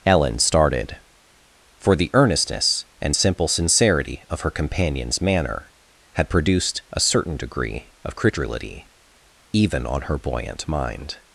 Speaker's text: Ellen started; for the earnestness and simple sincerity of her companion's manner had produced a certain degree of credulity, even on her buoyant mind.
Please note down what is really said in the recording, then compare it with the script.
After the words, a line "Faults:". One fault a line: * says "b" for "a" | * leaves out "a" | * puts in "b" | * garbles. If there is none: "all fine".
Ellen started; for the earnestness and simple sincerity of her companion's manner had produced a certain degree of credulity, even on her buoyant mind.
Faults:
all fine